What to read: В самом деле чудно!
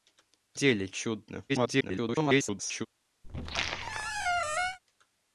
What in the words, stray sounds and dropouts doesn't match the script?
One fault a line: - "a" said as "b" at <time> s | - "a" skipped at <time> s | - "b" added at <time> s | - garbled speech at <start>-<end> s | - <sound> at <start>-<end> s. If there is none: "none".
- "самом" skipped at 0.6 s
- garbled speech at 1.5-2.9 s
- squeak at 3.2-4.8 s